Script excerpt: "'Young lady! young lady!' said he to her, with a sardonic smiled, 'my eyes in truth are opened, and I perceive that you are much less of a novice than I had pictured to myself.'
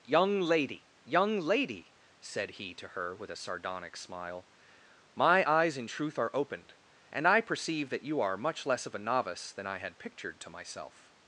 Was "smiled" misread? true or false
true